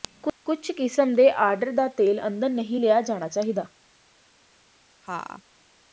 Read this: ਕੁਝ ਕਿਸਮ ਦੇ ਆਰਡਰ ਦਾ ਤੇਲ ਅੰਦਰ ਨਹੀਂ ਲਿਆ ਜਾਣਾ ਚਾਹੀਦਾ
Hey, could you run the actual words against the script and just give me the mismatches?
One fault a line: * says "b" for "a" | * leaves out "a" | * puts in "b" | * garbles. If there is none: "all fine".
all fine